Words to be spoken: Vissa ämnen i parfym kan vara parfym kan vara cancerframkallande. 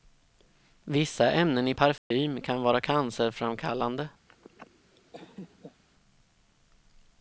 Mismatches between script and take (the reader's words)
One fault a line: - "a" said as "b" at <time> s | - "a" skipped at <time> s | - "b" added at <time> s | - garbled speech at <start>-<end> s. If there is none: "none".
- "parfym kan vara" skipped at 2.8 s